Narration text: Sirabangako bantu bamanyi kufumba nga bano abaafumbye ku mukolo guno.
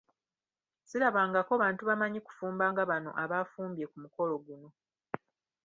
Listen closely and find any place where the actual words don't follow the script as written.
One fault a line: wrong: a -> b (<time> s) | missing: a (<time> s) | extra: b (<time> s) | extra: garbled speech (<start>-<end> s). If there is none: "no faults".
no faults